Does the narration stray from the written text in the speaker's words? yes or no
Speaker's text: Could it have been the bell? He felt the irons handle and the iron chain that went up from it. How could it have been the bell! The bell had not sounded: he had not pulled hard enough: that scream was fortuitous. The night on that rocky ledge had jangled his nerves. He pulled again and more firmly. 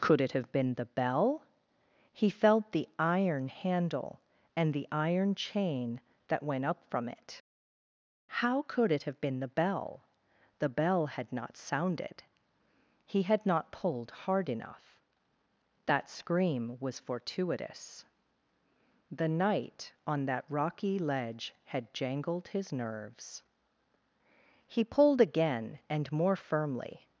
yes